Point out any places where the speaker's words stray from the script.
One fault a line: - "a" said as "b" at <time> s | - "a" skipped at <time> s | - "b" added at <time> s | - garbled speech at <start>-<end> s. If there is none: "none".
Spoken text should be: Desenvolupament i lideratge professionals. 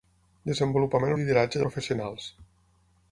none